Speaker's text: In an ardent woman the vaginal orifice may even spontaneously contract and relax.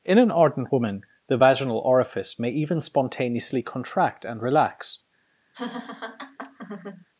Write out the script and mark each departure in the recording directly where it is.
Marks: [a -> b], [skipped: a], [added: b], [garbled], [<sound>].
In an ardent woman the vaginal orifice may even spontaneously contract and relax. [laugh]